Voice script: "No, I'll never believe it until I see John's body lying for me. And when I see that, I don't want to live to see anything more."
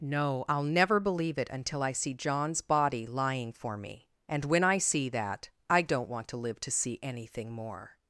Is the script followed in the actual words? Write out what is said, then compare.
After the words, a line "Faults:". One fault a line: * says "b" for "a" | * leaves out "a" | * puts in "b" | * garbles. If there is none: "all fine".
"No, I'll never believe it until I see John's body lying for me. And when I see that, I don't want to live to see anything more."
Faults:
all fine